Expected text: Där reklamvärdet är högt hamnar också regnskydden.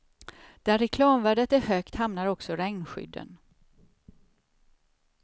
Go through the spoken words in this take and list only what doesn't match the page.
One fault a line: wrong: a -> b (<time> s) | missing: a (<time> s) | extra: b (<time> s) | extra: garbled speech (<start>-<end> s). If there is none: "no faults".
no faults